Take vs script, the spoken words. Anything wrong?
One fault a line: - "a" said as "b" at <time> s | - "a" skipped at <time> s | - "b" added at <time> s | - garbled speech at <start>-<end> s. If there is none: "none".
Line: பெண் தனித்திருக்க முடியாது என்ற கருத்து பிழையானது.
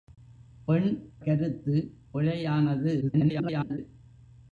- "தனித்திருக்க முடியாது என்ற" skipped at 1.1 s
- garbled speech at 3.0-3.8 s